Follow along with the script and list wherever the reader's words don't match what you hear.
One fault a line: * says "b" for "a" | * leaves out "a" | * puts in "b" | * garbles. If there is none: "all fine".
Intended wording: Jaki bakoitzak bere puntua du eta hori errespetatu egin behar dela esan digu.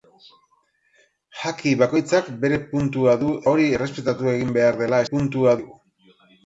* leaves out "eta"
* says "puntua" for "esan"